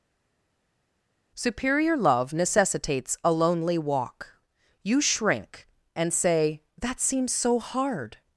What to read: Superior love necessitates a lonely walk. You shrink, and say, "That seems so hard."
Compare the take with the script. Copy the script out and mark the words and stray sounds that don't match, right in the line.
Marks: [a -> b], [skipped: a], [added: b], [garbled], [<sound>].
Superior love necessitates a lonely walk. You shrink, and say, "That seems so hard."